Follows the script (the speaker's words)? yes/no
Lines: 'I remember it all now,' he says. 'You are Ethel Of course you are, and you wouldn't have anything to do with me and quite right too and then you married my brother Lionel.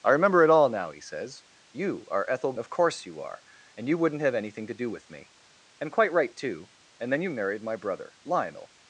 yes